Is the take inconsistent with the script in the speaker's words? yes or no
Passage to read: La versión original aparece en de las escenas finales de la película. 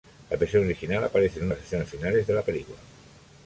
no